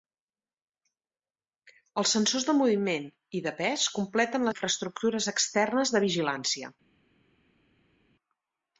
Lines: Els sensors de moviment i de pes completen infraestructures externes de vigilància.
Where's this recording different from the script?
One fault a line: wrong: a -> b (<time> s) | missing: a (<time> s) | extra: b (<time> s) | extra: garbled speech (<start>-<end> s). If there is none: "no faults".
no faults